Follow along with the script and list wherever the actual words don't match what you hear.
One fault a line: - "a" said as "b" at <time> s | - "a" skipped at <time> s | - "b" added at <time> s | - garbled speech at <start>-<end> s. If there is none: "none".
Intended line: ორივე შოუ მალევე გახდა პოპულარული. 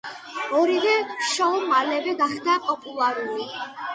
none